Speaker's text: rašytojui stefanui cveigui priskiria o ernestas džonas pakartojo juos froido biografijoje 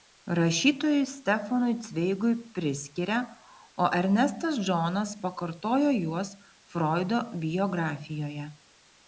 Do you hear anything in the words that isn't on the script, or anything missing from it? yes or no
no